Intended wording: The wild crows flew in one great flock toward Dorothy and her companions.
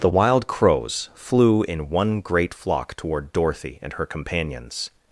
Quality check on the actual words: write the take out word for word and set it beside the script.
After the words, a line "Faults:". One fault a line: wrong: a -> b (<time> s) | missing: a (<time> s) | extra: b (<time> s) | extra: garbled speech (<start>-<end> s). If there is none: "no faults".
The wild crows flew in one great flock toward Dorothy and her companions.
Faults:
no faults